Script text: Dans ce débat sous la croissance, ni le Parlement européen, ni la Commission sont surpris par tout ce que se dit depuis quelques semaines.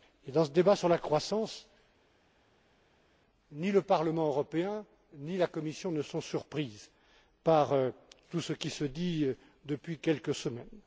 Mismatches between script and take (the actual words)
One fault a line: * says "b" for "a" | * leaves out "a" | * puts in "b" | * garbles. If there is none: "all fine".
* says "sur" for "sous"
* puts in "ne"
* says "qui" for "que"